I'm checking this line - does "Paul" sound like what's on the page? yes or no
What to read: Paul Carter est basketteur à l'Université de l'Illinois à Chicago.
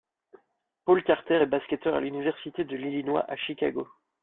yes